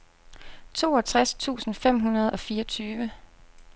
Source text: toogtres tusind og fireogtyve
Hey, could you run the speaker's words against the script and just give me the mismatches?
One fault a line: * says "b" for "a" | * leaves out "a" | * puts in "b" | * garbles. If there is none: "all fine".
* puts in "fem hundrede"